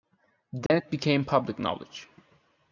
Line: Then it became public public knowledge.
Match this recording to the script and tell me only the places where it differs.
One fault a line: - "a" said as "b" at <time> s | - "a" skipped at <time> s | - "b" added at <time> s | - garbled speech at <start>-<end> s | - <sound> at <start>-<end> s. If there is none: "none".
- dropout at 0.7-0.7 s
- "public" skipped at 1.6 s